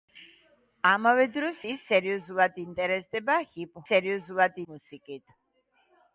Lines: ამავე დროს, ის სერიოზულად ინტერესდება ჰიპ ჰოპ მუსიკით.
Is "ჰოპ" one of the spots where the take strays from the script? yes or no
yes